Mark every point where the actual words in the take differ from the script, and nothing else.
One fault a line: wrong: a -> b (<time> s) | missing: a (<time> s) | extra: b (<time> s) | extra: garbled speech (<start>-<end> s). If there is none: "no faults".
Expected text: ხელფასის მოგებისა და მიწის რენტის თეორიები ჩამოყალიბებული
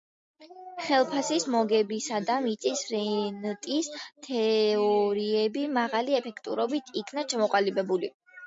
extra: მაღალი ეფექტურობით იქნა (5.8 s)